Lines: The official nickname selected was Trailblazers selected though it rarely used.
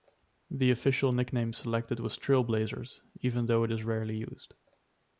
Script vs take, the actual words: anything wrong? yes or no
yes